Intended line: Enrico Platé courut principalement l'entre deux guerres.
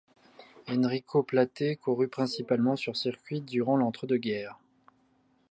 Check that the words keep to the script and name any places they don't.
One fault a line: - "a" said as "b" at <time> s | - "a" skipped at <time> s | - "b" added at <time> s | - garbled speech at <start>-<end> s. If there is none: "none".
- "sur circuit durant" added at 2.8 s